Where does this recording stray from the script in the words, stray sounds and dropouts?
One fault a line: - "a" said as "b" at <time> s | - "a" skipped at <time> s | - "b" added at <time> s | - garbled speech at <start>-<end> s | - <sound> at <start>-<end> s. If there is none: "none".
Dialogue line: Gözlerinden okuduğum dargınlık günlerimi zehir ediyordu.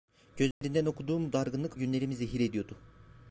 - dropout at 0.5-0.6 s